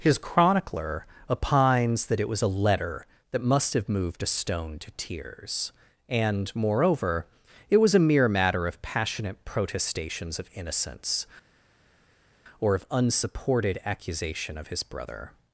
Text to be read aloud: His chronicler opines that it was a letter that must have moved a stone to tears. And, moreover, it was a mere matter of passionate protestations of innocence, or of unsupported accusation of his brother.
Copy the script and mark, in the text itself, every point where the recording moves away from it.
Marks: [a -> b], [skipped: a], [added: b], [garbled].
His chronicler opines that it was a letter that must have moved a stone to tears. And, moreover, it was a mere matter of passionate protestations of innocence, or of unsupported accusation of his brother.